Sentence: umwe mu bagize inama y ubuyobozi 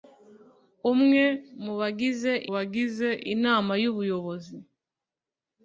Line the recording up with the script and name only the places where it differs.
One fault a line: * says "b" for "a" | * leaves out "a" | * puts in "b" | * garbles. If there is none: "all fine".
* puts in "bagize"